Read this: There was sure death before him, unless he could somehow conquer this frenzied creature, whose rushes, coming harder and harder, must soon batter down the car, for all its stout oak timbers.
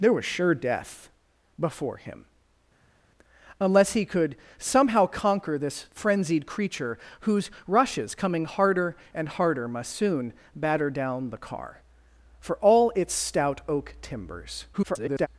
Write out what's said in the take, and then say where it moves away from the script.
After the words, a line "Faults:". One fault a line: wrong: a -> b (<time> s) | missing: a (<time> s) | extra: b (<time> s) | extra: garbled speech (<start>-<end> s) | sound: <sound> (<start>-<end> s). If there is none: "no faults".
There was sure death before him, unless he could somehow conquer this frenzied creature, whose rushes, coming harder and harder, must soon batter down the car, for all its stout oak timbers. [garbled]
Faults:
extra: garbled speech (14.7-15.3 s)